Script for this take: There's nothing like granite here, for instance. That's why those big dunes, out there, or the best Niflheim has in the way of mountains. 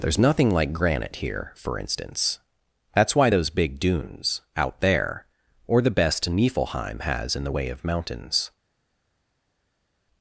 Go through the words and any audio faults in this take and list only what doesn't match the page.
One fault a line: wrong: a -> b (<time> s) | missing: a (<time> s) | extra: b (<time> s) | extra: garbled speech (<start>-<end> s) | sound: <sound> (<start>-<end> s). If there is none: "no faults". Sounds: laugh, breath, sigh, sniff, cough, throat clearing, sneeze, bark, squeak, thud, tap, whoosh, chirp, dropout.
no faults